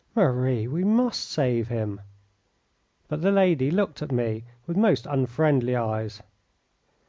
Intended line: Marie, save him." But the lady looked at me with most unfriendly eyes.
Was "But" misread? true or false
false